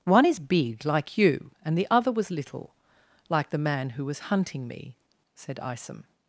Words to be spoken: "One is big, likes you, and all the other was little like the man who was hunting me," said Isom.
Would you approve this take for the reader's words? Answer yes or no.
no